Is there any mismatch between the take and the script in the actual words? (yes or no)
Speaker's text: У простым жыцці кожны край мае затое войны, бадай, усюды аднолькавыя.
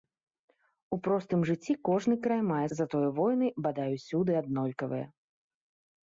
no